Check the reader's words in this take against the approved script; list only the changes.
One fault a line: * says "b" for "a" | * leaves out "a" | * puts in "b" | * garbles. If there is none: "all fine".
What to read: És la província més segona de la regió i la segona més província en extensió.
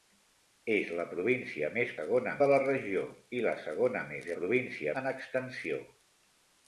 all fine